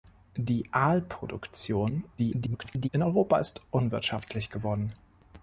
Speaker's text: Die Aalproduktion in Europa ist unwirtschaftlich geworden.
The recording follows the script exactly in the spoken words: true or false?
false